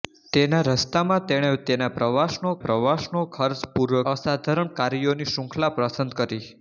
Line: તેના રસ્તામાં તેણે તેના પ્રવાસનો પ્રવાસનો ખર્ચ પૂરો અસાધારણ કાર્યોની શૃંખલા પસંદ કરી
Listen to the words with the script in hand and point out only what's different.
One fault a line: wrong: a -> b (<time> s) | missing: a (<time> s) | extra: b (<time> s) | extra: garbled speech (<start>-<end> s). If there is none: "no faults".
no faults